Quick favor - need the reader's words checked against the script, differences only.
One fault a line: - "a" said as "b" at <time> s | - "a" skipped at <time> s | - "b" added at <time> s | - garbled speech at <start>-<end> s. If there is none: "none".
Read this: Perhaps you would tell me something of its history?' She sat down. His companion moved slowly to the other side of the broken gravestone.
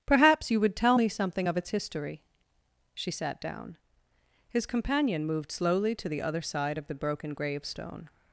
none